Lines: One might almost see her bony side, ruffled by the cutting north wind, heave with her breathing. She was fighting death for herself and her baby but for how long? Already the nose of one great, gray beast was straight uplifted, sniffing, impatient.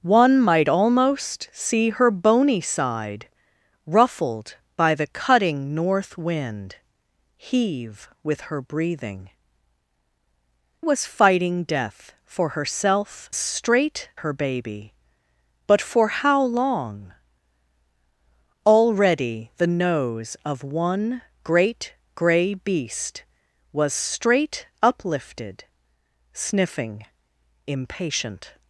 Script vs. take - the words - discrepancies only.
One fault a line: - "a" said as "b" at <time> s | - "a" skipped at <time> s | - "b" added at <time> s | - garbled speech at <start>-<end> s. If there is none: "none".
- "She" skipped at 9.3 s
- "and" said as "straight" at 13.3 s